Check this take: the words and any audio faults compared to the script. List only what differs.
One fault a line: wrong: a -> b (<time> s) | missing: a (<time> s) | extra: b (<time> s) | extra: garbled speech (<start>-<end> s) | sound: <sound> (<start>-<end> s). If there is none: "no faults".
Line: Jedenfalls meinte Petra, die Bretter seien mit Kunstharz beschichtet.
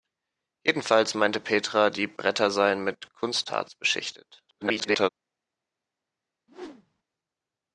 extra: garbled speech (4.5-5.1 s)
sound: whoosh (6.5-7.0 s)